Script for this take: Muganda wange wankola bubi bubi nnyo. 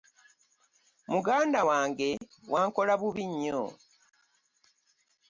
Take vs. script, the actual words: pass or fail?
fail